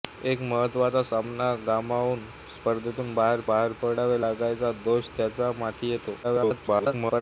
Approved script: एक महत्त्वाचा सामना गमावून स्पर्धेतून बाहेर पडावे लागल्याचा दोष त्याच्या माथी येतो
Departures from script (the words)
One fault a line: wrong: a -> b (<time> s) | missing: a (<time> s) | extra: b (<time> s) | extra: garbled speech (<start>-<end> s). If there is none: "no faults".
extra: बाहेर (3.5 s)
extra: garbled speech (6.2-7.2 s)